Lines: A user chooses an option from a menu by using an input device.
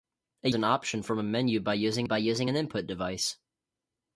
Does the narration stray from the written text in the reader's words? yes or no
yes